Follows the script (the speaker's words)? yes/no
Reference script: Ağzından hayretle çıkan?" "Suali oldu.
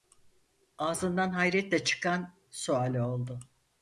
yes